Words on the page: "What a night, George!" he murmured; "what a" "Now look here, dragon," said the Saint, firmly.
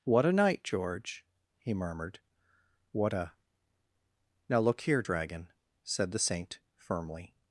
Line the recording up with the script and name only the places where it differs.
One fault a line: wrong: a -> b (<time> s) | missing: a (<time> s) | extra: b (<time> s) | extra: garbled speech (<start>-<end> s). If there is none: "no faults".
no faults